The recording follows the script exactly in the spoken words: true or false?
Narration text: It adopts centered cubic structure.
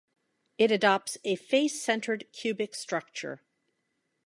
false